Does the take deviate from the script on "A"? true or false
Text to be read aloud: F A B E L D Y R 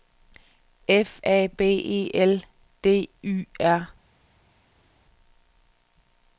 false